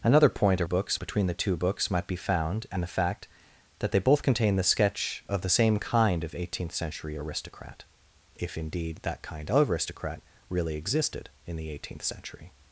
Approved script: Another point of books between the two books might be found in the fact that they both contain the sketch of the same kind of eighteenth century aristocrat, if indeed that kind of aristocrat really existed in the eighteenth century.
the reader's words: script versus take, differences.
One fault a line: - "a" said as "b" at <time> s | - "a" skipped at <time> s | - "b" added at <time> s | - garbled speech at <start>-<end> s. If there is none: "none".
none